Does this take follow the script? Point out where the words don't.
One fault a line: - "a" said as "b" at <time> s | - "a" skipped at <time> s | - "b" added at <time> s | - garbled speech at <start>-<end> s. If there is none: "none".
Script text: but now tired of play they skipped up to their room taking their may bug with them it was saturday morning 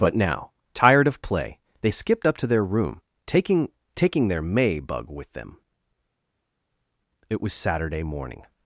- "taking" added at 4.0 s